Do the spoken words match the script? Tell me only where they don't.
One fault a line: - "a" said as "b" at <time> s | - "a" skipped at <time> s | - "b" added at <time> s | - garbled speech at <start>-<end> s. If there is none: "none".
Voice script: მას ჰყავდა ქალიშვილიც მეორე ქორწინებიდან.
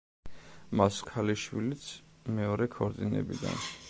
- "ჰყავდა" skipped at 1.0 s